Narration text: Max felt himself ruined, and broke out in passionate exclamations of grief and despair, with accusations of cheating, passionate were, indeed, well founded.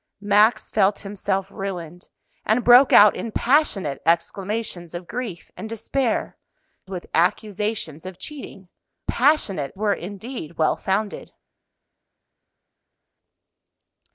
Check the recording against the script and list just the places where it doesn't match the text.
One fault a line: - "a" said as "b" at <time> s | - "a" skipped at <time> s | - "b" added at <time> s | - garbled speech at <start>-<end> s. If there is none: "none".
none